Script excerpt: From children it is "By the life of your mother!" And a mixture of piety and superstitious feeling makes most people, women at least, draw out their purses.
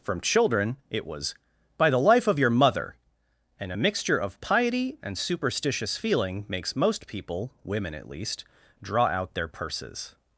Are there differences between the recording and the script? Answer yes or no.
yes